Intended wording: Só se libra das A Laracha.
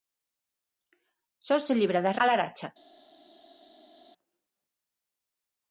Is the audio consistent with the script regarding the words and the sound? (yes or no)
yes